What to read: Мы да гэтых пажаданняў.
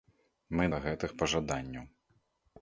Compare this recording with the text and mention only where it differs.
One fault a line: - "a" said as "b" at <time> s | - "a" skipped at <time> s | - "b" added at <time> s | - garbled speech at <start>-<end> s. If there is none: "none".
none